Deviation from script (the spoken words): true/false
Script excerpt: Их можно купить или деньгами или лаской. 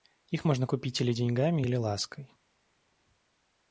false